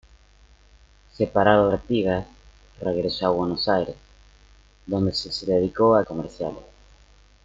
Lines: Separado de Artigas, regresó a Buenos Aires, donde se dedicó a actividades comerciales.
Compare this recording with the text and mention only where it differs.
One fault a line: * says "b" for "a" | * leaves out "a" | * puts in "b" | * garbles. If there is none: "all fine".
* leaves out "de"
* puts in "se"
* leaves out "actividades"